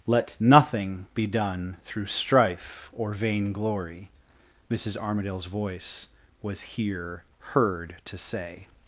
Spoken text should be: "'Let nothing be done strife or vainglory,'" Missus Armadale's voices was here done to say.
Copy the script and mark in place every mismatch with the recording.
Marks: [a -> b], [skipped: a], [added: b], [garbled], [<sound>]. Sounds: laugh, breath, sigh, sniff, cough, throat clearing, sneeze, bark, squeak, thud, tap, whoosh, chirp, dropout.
"'Let nothing be done [added: through] strife or vainglory,'" Missus Armadale's [voices -> voice] was here [done -> heard] to say.